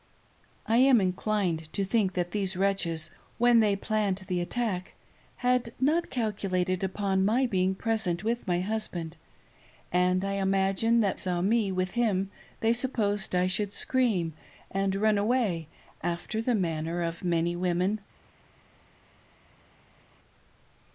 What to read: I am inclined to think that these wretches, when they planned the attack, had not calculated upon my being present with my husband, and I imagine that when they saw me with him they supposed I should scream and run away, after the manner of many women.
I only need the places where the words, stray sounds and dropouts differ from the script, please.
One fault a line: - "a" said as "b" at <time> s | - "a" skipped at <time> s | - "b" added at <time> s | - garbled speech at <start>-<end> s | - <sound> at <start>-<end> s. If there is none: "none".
- "when they" skipped at 11.2 s